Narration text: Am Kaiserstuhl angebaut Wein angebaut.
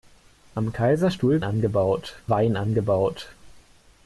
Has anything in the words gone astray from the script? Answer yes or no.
no